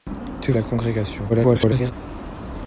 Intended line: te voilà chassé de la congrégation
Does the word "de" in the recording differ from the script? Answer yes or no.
yes